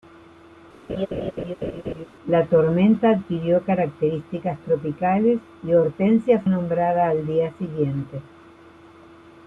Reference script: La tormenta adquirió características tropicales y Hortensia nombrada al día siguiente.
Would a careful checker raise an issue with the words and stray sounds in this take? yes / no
yes